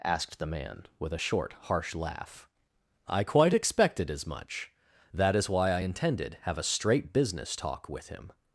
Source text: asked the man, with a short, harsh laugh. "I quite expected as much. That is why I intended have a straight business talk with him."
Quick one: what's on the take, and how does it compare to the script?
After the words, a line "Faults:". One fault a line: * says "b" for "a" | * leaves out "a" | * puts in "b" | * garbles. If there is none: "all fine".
asked the man, with a short, harsh laugh. "I quite expected as much. That is why I intended have a straight business talk with him."
Faults:
all fine